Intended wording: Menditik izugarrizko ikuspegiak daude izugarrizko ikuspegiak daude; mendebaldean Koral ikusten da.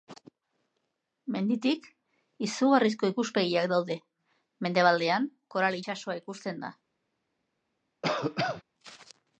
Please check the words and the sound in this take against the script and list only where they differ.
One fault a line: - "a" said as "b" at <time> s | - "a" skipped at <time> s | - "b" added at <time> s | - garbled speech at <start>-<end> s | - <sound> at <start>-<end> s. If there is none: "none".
- "izugarrizko ikuspegiak daude" skipped at 4.0 s
- "itsasoa" added at 5.8 s
- cough at 8.0-8.6 s